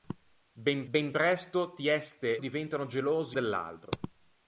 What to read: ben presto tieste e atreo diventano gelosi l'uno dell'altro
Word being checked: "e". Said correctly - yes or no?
no